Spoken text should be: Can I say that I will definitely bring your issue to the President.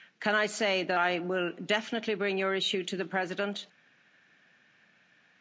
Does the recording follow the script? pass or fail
pass